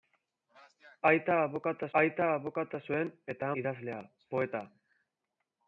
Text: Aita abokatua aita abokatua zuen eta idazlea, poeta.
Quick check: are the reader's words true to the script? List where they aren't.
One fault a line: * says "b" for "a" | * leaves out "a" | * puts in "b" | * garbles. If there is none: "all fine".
all fine